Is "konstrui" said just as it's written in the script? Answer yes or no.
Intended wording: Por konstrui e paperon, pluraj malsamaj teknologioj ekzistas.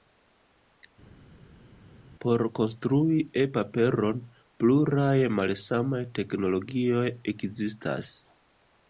yes